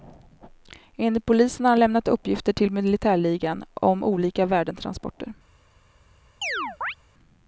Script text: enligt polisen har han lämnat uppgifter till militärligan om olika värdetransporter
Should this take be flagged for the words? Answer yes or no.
no